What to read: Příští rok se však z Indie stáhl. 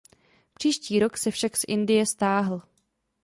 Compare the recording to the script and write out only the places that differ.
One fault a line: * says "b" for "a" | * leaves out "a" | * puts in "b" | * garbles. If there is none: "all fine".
all fine